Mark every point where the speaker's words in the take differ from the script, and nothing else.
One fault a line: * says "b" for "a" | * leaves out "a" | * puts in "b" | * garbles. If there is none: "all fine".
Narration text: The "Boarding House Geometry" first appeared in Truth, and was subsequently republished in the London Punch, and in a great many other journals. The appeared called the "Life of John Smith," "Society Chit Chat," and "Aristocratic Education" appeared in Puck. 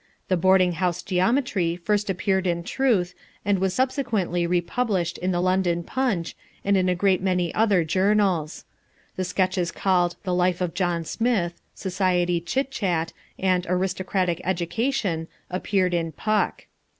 * says "sketches" for "appeared"